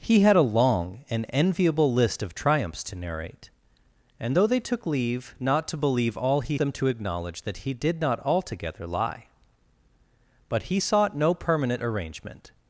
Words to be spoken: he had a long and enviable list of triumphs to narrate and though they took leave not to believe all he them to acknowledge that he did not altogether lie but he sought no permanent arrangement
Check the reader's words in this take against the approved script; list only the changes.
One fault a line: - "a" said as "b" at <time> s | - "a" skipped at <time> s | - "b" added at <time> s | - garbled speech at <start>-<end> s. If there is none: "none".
none